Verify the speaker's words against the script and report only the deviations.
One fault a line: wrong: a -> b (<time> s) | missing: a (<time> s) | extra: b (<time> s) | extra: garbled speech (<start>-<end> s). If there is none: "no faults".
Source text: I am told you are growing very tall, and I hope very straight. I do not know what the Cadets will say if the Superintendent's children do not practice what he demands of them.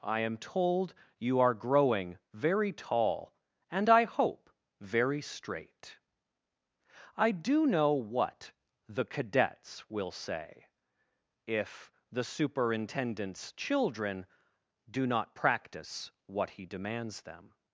missing: not (7.7 s)
missing: of (17.2 s)